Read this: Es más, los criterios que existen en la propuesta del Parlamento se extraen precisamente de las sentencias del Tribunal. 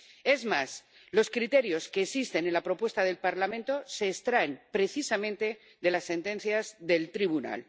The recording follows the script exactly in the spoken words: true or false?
true